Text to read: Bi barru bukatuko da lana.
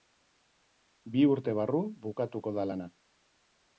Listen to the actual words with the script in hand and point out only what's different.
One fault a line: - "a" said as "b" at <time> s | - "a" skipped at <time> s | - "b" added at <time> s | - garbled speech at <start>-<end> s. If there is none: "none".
- "urte" added at 1.3 s